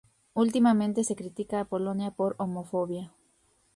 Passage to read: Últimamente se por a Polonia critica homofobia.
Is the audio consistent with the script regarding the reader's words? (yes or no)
no